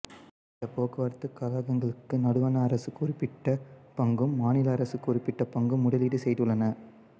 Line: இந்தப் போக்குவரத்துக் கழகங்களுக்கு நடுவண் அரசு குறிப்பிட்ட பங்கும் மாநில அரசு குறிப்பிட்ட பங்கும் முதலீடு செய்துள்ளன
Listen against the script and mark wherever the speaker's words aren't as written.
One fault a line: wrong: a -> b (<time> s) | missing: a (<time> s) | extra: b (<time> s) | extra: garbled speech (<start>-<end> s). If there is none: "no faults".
no faults